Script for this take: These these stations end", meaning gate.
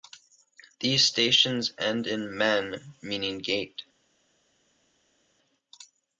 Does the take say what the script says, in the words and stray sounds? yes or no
no